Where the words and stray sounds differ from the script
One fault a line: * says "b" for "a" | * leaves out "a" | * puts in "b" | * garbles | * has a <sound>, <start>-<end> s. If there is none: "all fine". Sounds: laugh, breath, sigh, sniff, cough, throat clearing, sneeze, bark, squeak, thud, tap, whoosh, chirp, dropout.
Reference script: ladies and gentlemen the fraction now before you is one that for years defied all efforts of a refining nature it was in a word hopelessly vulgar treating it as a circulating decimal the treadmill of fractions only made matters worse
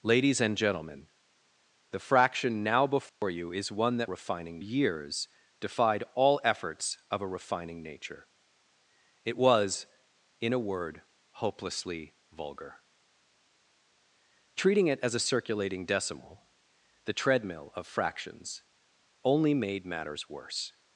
* has a dropout, 3.1-3.2 s
* says "refining" for "for"